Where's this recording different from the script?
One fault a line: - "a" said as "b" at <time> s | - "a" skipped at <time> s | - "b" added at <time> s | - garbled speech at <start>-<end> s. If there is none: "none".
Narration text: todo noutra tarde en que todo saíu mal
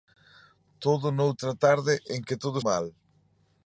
- "saíu" skipped at 2.6 s